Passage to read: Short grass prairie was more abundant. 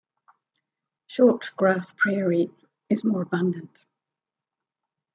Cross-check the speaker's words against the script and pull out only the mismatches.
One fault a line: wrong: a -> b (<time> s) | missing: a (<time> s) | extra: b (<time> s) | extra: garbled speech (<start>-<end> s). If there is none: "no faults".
wrong: was -> is (2.9 s)